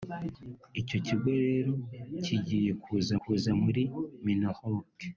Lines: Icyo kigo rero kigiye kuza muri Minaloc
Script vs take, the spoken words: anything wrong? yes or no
yes